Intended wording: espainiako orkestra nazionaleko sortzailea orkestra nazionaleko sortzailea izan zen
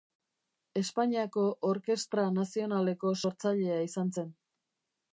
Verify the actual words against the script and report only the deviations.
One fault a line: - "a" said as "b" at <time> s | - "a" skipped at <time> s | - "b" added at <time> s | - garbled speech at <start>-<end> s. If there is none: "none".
- "orkestra nazionaleko sortzailea" skipped at 3.8 s